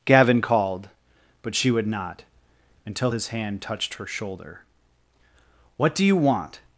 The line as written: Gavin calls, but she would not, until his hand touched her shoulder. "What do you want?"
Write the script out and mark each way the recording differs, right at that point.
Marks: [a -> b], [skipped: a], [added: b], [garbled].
Gavin [calls, -> called] but she would not, until his hand touched her shoulder. "What do you want?"